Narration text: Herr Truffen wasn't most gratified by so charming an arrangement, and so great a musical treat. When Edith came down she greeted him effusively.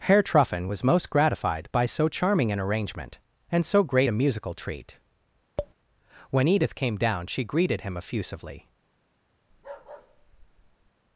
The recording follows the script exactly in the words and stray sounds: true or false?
false